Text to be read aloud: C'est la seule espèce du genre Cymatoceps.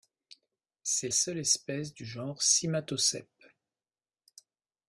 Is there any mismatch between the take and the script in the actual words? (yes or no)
yes